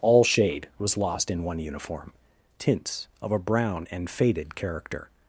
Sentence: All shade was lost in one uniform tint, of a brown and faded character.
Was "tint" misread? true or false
true